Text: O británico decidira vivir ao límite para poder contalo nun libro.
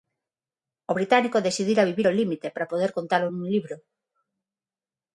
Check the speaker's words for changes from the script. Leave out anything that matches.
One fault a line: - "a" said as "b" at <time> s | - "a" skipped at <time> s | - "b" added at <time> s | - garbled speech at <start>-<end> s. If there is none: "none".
none